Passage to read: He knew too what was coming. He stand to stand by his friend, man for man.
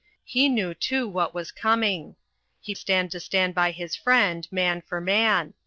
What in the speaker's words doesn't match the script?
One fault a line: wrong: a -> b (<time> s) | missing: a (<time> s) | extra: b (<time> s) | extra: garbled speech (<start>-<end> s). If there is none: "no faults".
no faults